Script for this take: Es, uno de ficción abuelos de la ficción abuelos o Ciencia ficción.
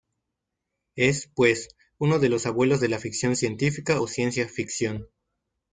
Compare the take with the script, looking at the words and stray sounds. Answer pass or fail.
fail